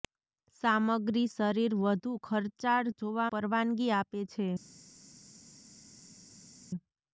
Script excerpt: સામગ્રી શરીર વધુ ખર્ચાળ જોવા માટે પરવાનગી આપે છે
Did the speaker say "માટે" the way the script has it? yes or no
no